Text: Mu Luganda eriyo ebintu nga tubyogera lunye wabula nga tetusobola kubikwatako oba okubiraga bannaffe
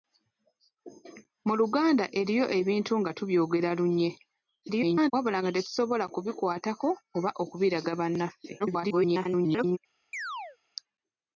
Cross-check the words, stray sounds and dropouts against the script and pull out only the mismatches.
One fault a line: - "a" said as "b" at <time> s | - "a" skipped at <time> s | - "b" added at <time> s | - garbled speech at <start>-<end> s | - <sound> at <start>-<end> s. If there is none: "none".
- garbled speech at 4.6-5.1 s
- garbled speech at 8.6-9.8 s
- chirp at 10.1-10.6 s